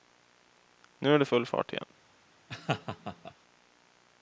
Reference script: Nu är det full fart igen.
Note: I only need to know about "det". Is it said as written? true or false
true